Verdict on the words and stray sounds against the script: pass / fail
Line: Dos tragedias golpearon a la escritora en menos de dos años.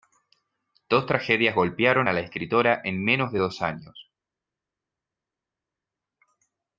pass